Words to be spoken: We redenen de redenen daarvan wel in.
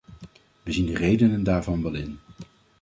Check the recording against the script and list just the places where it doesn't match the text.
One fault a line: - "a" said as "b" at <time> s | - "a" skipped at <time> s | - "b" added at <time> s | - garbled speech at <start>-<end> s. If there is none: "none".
- "redenen" said as "zien" at 0.7 s